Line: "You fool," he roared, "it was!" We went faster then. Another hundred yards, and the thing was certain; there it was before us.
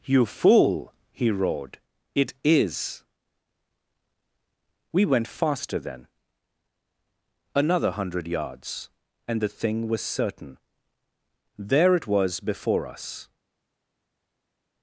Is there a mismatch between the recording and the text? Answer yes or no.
yes